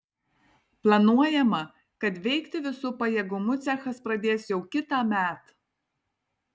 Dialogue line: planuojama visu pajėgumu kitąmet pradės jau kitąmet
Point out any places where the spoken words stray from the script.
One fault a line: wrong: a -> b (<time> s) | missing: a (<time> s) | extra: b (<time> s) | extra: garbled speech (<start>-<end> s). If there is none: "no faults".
extra: kad veikti (2.0 s)
wrong: kitąmet -> cechas (3.7 s)